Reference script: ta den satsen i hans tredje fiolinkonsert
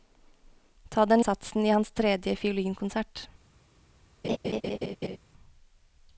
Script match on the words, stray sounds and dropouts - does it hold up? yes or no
no